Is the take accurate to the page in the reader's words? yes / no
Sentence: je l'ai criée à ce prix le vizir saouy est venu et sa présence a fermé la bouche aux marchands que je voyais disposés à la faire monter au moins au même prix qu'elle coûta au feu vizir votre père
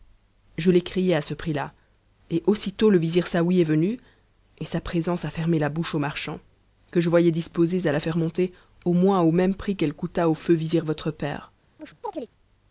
no